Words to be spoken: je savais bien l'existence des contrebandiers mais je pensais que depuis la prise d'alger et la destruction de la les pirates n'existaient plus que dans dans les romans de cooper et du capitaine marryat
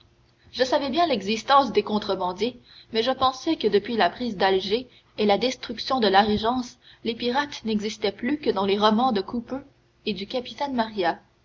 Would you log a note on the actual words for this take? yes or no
yes